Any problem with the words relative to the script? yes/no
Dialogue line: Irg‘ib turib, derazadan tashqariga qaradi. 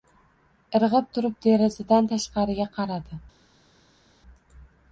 no